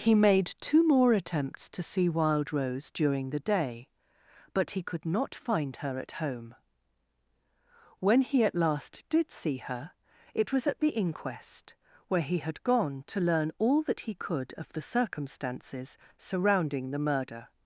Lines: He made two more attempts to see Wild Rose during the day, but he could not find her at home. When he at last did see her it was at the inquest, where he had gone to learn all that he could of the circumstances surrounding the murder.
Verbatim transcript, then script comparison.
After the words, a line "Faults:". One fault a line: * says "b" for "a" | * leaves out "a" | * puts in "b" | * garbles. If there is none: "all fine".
He made two more attempts to see Wild Rose during the day, but he could not find her at home. When he at last did see her it was at the inquest, where he had gone to learn all that he could of the circumstances surrounding the murder.
Faults:
all fine